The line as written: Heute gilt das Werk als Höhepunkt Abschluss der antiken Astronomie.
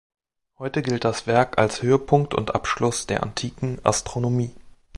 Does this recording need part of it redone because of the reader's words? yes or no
yes